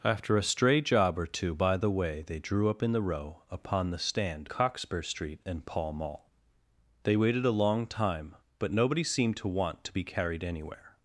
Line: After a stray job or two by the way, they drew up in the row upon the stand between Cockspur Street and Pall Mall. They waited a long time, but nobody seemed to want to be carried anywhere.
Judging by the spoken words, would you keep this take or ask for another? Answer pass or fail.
fail